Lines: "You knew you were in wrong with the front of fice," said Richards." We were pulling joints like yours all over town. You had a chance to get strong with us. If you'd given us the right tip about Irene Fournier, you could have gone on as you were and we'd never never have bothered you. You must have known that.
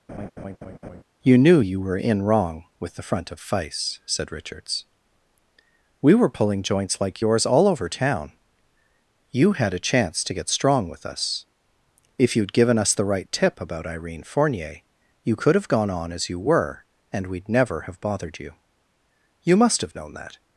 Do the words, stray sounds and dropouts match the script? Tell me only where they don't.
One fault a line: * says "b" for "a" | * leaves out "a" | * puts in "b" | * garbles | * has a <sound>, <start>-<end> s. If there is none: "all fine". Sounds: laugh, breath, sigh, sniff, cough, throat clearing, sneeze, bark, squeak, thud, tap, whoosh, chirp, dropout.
* has a laugh, 0.1-1.0 s
* leaves out "never"